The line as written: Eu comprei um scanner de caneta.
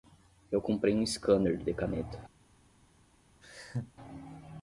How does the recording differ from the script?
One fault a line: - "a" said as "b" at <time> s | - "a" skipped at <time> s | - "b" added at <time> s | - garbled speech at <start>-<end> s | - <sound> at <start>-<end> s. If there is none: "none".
- laugh at 3.4-3.9 s